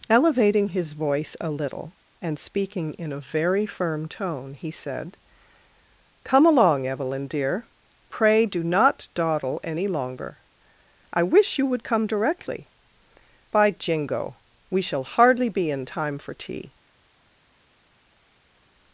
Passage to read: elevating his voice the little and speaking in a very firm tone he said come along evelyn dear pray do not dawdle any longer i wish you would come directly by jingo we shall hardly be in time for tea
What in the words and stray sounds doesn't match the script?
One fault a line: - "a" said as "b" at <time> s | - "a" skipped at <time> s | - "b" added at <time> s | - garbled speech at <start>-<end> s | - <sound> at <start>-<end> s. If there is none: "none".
- "the" said as "a" at 1.4 s